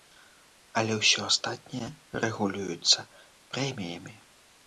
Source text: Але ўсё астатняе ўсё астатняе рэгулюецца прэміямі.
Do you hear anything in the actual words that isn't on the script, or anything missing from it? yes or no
yes